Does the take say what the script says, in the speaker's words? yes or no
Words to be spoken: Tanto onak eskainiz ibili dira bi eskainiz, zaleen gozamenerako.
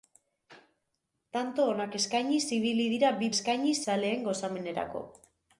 yes